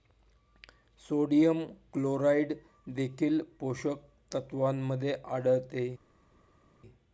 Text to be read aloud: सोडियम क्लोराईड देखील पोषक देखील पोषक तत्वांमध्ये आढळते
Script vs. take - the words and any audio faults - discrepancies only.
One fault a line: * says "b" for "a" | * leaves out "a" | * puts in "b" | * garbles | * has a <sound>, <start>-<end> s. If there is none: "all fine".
* leaves out "देखील पोषक"